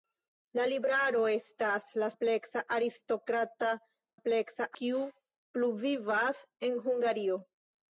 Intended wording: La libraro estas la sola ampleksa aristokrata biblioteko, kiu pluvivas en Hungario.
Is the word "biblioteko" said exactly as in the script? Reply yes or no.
no